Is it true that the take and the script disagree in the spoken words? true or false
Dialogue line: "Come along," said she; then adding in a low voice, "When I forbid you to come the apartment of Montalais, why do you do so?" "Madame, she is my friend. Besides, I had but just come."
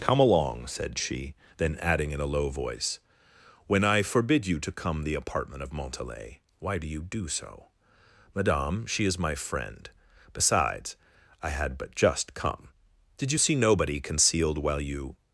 true